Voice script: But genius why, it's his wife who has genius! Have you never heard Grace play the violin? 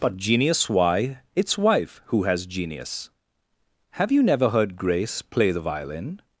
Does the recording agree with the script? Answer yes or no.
no